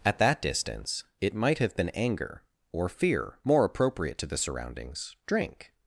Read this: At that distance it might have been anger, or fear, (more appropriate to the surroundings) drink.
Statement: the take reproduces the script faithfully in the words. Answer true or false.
true